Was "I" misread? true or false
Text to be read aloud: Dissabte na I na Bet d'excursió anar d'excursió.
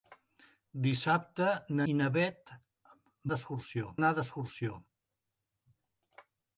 false